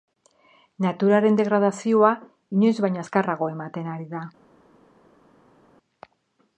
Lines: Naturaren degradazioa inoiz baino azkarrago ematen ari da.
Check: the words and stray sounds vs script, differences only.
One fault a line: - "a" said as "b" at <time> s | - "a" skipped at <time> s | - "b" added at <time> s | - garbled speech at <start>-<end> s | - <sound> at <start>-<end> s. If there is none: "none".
none